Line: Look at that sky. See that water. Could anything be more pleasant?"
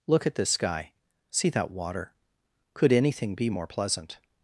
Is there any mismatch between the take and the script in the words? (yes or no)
yes